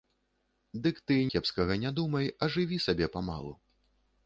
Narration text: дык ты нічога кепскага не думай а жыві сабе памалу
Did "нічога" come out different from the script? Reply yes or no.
yes